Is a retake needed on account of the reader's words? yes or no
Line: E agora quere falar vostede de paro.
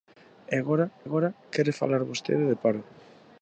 yes